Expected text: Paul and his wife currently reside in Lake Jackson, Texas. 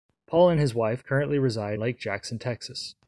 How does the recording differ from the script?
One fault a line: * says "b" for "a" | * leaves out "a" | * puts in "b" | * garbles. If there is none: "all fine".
* leaves out "in"